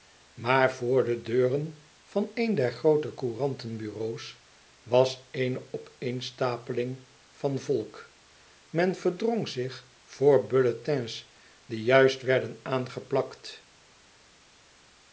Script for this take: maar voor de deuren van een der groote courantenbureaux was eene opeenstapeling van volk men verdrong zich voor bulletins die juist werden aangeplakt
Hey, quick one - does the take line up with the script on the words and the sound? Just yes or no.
yes